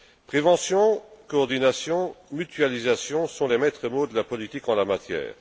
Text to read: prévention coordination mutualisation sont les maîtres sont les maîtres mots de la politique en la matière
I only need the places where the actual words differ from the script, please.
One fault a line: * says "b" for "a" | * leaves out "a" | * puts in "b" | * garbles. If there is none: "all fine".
* leaves out "sont les maîtres"